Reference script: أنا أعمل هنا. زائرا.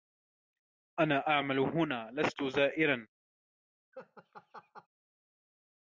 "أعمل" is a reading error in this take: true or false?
false